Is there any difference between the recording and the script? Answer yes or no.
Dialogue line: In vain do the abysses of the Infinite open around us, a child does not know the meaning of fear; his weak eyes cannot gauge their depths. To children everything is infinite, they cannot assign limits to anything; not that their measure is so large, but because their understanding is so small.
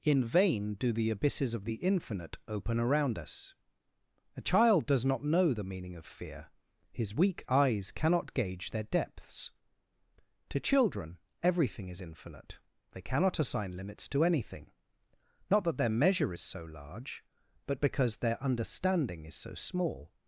no